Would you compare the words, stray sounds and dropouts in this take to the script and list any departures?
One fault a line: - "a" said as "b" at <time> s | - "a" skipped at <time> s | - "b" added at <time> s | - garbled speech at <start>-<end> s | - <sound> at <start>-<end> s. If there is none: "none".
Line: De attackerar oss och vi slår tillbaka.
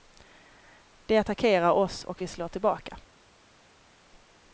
none